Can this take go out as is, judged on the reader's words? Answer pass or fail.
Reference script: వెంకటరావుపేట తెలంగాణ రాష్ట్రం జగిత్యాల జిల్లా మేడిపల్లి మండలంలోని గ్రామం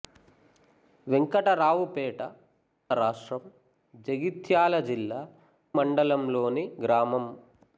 fail